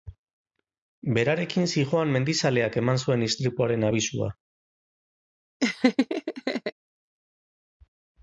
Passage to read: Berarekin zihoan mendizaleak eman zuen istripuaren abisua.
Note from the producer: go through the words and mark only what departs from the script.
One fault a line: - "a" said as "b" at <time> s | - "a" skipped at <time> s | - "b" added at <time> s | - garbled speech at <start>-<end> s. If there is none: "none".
none